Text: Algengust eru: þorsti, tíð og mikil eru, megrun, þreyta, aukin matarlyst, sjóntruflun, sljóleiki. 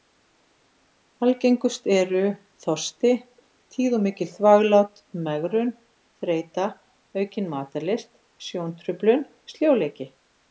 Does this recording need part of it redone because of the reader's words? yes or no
yes